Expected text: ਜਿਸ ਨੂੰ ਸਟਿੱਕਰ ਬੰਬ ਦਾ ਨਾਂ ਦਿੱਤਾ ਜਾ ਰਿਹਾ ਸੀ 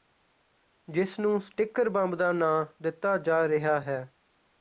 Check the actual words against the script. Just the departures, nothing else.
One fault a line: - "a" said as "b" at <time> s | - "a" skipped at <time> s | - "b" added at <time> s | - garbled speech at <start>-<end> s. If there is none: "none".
- "ਸੀ" said as "ਹੈ" at 3.8 s